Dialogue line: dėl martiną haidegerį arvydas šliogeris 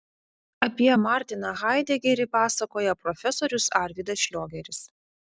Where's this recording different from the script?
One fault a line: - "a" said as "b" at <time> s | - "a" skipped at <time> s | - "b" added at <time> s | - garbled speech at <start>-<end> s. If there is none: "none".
- "dėl" said as "apie" at 0.7 s
- "pasakoja profesorius" added at 2.4 s